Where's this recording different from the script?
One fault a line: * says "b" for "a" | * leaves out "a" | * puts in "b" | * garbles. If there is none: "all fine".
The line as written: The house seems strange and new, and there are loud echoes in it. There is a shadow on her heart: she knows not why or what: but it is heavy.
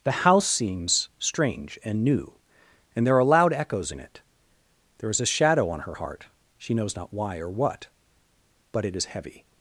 all fine